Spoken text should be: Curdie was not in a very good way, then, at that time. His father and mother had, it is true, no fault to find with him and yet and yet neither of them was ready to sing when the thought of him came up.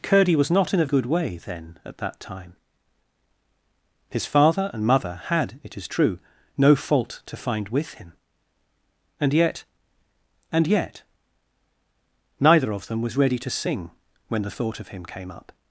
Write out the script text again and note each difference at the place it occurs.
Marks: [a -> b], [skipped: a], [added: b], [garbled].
Curdie was not in a [skipped: very] good way, then, at that time. His father and mother had, it is true, no fault to find with him and yet and yet neither of them was ready to sing when the thought of him came up.